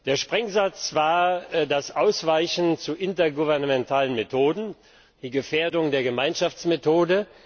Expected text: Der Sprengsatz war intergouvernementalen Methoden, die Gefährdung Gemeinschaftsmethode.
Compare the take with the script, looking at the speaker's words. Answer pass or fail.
fail